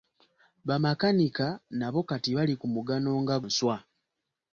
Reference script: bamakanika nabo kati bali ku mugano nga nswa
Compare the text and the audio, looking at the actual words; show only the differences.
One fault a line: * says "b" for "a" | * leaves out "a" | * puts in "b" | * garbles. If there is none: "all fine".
all fine